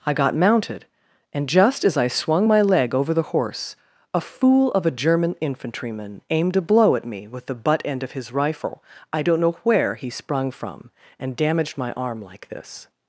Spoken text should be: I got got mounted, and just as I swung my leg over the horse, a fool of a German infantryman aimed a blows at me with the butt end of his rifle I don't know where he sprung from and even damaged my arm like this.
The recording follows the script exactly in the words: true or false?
false